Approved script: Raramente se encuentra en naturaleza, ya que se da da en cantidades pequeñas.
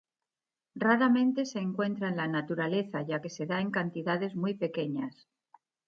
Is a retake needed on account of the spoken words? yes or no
yes